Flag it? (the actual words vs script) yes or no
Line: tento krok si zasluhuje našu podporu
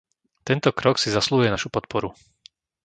no